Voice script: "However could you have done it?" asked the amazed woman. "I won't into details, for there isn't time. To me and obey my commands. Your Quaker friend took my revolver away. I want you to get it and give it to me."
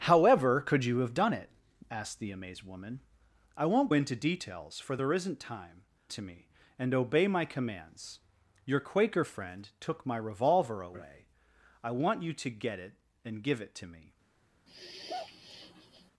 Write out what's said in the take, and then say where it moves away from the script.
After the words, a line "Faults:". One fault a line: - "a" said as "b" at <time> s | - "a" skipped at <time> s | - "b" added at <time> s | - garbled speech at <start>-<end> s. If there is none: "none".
"However could you have done it?" asked the amazed woman. "I won't into details, for there isn't time. To me and obey my commands. Your Quaker friend took my revolver away. I want you to get it and give it to me."
Faults:
none